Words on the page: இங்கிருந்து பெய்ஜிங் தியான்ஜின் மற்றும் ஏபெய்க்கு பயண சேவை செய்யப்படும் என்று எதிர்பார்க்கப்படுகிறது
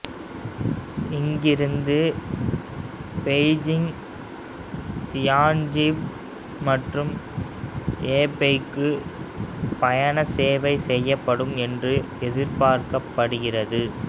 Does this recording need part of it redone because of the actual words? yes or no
no